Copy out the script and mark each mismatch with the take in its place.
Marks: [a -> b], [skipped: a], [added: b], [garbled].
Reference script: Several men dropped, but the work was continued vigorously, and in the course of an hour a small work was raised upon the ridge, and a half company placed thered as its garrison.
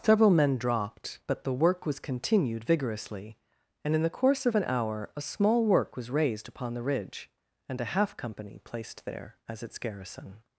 Several men dropped, but the work was continued vigorously, and in the course of an hour a small work was raised upon the ridge, and a half company placed [thered -> there] as its garrison.